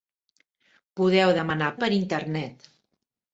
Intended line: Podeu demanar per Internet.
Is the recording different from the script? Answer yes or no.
no